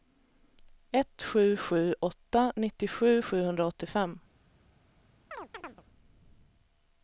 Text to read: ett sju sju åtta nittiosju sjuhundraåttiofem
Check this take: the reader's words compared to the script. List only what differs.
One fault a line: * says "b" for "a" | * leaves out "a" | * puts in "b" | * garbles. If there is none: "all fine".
all fine